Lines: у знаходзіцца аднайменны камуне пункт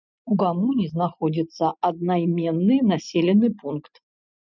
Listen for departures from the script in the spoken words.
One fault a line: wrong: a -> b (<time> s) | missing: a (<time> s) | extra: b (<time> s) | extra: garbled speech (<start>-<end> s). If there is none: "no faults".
extra: камуне (0.4 s)
wrong: камуне -> населены (2.9 s)